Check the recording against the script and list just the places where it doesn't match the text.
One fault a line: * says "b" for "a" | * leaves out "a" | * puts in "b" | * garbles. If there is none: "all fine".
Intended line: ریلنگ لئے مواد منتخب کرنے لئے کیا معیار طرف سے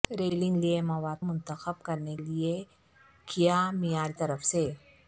all fine